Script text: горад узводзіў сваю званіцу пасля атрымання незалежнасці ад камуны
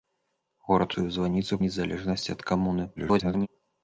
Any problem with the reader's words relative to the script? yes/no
yes